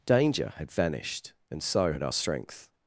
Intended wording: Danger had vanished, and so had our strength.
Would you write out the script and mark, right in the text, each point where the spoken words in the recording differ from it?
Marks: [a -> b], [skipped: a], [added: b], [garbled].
Danger had vanished, and so had our strength.